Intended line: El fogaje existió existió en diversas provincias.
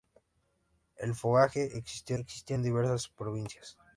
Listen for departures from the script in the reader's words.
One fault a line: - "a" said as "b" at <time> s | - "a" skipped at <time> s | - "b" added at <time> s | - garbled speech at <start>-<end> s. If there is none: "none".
none